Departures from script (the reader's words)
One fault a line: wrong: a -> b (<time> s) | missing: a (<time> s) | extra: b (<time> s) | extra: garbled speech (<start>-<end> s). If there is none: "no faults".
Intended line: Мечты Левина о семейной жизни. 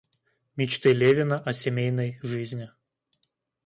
no faults